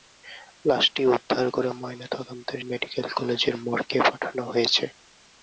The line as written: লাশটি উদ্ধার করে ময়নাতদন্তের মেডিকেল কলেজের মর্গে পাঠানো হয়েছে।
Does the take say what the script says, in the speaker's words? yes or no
yes